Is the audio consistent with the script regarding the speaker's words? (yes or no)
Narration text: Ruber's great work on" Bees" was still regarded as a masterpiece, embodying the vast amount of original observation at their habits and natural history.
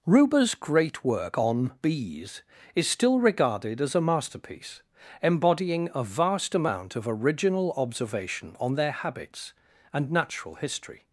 no